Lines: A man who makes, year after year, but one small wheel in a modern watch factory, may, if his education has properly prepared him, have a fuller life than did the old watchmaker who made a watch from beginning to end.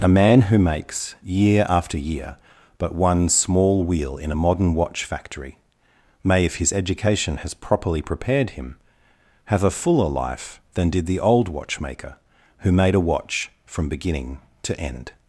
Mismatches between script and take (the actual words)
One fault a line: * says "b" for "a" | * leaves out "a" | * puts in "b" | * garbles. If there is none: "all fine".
all fine